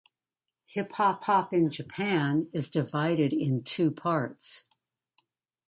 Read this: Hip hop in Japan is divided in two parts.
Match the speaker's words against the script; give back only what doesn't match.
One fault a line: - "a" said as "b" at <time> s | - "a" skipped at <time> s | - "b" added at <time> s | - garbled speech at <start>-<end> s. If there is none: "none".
- "hop" added at 1.2 s